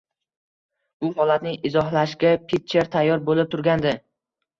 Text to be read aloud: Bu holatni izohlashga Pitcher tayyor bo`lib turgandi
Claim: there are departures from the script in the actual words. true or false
false